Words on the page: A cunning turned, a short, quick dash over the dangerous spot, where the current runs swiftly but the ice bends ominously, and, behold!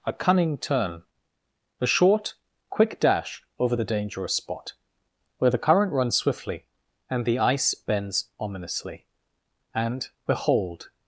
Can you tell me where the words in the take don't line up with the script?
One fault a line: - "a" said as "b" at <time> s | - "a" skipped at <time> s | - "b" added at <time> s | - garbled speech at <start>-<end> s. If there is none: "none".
- "turned" said as "turn" at 0.6 s
- "but" said as "and" at 7.1 s